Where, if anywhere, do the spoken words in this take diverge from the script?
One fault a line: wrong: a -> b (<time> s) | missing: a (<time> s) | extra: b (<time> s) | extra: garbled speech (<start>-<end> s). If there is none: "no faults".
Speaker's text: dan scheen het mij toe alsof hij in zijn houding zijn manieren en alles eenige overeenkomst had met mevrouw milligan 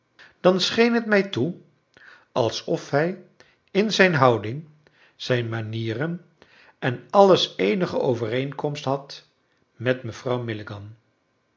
no faults